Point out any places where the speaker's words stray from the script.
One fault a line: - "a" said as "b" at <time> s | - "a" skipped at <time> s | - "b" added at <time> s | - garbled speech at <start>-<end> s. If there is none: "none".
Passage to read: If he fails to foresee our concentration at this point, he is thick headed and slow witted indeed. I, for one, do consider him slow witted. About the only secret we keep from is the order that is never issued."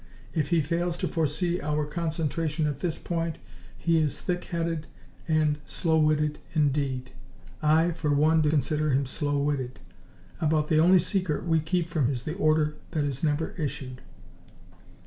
none